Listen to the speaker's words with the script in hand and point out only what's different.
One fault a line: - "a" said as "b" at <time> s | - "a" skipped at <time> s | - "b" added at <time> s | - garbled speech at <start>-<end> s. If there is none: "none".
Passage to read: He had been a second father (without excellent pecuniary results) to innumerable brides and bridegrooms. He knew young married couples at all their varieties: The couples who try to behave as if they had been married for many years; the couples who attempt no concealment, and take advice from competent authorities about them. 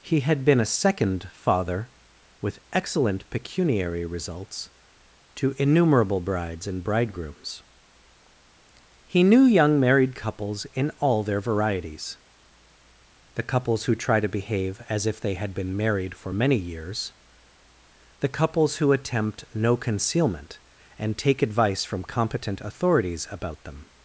- "without" said as "with" at 2.4 s
- "at" said as "in" at 10.8 s